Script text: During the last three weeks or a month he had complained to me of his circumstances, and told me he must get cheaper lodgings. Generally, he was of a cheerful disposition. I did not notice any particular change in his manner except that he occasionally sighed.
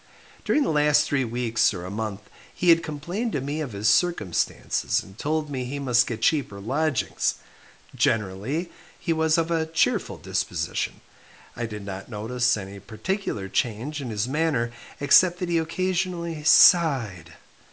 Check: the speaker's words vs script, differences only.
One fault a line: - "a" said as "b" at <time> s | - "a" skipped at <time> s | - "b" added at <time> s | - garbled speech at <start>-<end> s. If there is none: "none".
none